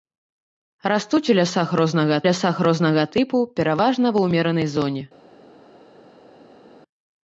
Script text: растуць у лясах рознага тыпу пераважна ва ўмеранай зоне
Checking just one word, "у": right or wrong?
right